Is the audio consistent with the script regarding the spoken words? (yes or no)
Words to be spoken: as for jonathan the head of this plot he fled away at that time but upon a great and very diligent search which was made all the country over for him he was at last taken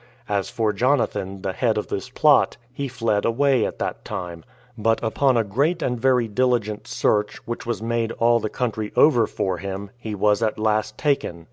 yes